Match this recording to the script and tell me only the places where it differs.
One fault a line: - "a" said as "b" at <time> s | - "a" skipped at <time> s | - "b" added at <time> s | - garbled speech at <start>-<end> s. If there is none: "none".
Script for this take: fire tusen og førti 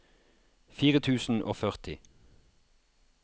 none